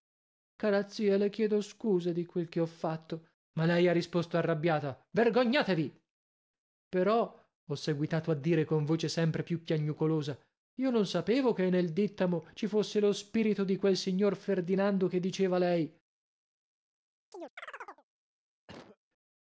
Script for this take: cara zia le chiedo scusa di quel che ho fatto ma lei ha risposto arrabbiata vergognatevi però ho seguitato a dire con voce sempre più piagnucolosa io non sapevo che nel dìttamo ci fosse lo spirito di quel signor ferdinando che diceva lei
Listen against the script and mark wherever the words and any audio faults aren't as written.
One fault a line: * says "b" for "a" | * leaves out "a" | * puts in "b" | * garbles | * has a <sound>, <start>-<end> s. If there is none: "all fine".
* has a chirp, 17.3-18.0 s
* has a cough, 18.7-19.0 s